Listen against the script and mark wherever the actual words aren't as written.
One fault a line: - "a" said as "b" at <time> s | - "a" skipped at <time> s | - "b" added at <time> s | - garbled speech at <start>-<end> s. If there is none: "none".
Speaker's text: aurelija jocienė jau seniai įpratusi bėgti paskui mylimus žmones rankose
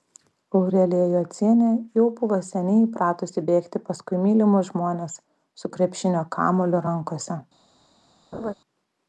- "buvo" added at 2.2 s
- "su krepšinio kamuoliu" added at 5.6 s